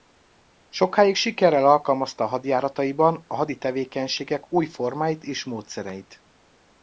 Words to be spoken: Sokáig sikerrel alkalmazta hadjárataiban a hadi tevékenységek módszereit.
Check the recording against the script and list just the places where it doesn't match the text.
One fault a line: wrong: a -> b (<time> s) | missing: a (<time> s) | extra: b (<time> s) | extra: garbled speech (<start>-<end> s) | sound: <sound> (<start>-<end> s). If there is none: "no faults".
extra: új formáit és (4.5 s)